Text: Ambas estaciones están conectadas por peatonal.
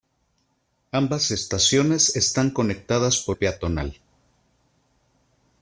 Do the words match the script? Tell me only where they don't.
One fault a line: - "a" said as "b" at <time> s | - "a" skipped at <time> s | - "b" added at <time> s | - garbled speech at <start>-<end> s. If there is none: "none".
none